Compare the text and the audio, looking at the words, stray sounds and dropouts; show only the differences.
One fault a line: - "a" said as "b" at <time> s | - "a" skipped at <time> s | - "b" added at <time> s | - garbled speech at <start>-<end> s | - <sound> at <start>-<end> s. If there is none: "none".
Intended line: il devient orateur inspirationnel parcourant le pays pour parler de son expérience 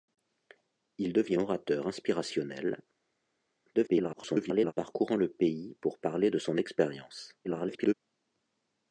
- garbled speech at 3.7-4.7 s
- garbled speech at 7.4-7.9 s